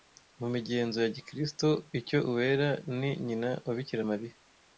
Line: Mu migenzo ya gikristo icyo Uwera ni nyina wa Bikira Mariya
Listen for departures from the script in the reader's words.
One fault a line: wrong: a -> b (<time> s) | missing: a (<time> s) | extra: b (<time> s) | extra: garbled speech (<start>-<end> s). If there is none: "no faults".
no faults